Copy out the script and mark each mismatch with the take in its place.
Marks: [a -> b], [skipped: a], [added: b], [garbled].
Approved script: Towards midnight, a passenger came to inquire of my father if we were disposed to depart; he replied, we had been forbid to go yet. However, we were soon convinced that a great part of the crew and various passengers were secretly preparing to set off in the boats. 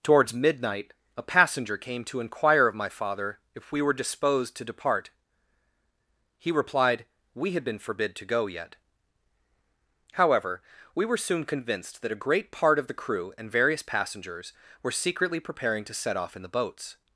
Towards midnight, a passenger came to inquire of my father if we were disposed to depart; he replied, we had been forbid to go yet. However, we were soon convinced that a great part of the crew and various passengers were secretly preparing to set off in the boats.